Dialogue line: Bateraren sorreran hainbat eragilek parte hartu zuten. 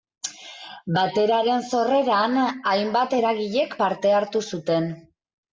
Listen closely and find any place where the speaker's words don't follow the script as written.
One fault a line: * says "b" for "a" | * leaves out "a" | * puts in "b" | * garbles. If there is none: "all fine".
all fine